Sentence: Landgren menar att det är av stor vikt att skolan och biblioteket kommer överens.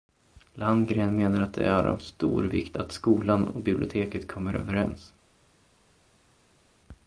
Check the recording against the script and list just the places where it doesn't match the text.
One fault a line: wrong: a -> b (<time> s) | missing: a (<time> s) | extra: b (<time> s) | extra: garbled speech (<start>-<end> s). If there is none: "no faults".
no faults